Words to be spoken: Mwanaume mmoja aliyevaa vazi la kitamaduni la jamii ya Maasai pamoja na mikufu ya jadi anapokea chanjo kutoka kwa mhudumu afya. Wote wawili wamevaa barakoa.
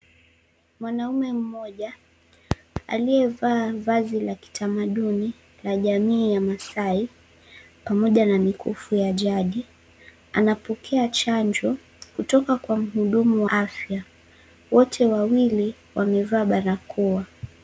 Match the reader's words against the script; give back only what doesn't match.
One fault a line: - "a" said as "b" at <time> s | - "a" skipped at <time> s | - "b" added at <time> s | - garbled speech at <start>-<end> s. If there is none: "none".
none